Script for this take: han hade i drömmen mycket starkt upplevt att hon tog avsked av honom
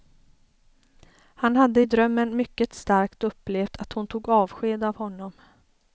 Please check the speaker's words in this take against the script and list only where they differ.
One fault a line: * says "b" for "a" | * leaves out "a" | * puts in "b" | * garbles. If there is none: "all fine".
all fine